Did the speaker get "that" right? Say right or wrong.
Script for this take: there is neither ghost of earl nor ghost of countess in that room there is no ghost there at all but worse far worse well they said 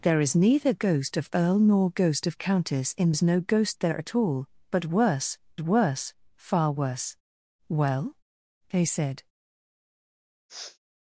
wrong